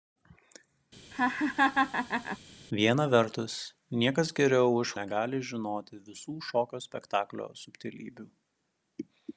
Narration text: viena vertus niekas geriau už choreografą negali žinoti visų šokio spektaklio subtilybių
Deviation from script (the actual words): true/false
true